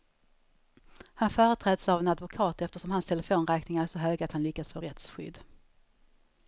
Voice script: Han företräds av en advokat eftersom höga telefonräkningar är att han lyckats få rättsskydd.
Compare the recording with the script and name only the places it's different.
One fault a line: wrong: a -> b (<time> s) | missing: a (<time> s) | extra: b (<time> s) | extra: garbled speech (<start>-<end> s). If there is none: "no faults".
wrong: höga -> hans (2.9 s)
extra: så höga (3.9 s)